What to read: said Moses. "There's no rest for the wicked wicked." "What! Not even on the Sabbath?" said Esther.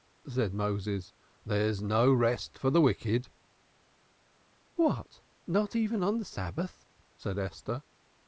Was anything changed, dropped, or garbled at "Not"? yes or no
no